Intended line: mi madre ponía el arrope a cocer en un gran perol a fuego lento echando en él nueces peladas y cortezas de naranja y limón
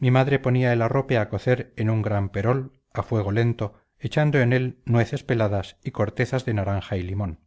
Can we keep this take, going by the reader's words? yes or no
yes